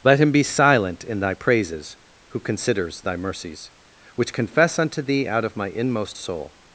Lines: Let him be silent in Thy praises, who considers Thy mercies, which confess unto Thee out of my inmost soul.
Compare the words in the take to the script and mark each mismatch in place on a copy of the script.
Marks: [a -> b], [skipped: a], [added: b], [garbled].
Let him be silent in Thy praises, who considers Thy mercies, which confess unto Thee out of my inmost soul.